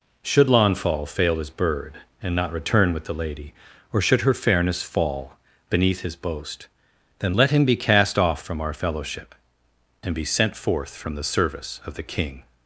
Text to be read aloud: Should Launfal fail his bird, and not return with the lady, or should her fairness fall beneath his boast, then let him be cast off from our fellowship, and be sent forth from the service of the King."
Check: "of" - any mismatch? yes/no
no